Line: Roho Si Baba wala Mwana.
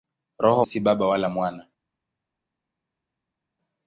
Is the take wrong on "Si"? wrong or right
right